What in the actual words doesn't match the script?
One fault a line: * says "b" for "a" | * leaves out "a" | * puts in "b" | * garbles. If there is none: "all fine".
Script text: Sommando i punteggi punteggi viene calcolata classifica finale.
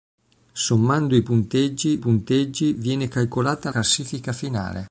all fine